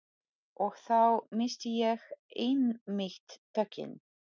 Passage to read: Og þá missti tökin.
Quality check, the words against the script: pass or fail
fail